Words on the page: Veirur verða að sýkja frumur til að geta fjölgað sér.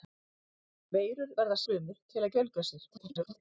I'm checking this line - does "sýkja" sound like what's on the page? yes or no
no